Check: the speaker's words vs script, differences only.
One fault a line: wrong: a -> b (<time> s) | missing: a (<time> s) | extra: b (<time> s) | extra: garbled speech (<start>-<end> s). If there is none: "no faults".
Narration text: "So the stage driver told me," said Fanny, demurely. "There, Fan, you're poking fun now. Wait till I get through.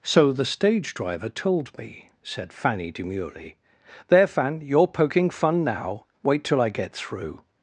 no faults